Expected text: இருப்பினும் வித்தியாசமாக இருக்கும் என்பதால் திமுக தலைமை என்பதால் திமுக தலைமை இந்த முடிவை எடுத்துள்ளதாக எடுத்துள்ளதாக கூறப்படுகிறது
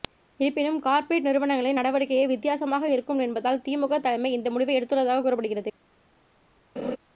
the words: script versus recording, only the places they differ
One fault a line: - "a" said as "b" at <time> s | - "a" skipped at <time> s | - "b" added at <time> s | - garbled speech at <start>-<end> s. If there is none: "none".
- "வித்தியாசமாக இருக்கும் என்பதால் திமுக தலைமை" said as "கார்ப்பரேட் நிறுவனங்களின் நடவடிக்கையே வித்தியாசமாக இருக்கும்" at 0.8 s
- "எடுத்துள்ளதாக" skipped at 5.2 s